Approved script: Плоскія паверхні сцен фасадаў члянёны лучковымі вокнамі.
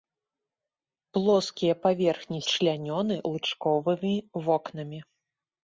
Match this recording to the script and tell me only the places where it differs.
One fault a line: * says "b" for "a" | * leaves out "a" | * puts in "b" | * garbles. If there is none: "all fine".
* leaves out "сцен фасадаў"